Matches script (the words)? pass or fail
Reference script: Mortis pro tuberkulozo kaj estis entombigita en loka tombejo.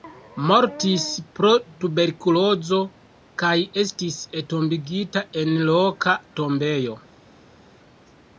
pass